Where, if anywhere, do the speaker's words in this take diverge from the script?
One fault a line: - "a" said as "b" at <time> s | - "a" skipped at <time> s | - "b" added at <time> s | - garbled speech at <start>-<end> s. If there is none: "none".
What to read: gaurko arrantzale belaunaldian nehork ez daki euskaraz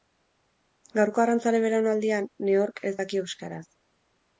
none